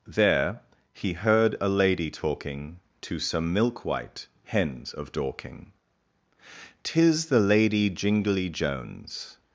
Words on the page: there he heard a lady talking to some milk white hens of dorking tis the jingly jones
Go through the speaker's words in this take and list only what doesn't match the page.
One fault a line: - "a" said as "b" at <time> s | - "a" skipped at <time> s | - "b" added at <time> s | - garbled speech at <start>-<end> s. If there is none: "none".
- "lady" added at 7.4 s